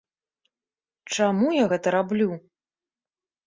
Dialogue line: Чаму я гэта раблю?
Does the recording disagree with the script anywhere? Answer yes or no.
no